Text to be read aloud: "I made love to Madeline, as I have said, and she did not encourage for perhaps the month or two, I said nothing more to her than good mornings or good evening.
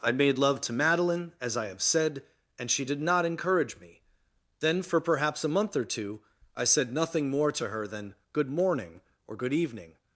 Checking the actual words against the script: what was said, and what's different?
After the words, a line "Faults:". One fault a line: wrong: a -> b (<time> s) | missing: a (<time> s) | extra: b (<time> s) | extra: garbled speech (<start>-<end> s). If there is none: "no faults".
"I made love to Madeline, as I have said, and she did not encourage me. Then, for perhaps a month or two, I said nothing more to her than good morning or good evening.
Faults:
extra: me Then (3.8 s)
wrong: the -> a (5.4 s)
wrong: mornings -> morning (8.5 s)